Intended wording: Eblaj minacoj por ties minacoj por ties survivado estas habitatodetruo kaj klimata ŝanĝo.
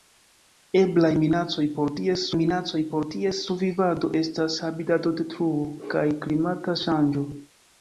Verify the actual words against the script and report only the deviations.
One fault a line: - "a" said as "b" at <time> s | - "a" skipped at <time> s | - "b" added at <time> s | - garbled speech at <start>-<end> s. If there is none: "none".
none